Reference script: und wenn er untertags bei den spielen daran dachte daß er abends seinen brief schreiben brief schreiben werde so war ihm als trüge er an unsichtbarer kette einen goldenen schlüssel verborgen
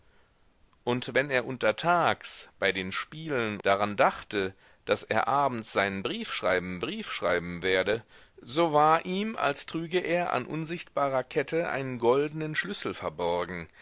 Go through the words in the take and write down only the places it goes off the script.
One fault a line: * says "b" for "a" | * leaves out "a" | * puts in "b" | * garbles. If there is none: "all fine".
all fine